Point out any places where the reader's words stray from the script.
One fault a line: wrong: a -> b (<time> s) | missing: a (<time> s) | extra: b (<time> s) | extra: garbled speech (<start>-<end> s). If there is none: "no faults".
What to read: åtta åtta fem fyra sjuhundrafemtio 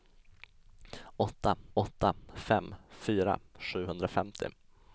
no faults